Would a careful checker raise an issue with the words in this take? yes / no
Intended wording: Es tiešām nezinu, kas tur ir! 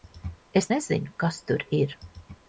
yes